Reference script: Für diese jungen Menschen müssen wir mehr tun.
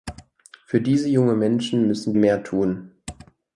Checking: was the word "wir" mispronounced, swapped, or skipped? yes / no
yes